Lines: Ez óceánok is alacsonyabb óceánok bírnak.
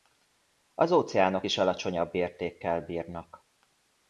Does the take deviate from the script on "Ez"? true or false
true